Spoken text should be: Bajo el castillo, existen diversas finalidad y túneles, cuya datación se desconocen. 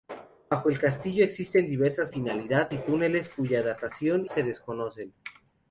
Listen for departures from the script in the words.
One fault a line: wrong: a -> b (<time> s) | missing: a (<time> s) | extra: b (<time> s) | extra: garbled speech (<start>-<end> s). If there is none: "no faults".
no faults